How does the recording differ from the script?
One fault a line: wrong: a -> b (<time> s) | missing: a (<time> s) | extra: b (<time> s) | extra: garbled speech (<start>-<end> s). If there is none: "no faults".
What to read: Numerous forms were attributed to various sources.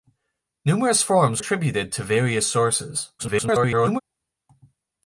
missing: were (1.4 s)
extra: garbled speech (3.2-4.0 s)